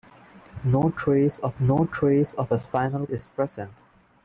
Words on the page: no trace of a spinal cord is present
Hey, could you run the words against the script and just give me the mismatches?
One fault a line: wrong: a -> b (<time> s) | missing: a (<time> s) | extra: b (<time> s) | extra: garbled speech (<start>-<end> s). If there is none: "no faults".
extra: no trace of (1.6 s)
missing: cord (3.1 s)